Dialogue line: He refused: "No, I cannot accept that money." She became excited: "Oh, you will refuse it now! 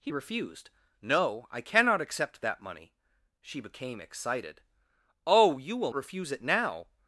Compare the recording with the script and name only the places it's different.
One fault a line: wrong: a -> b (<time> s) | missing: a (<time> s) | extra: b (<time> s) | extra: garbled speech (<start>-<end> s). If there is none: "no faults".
no faults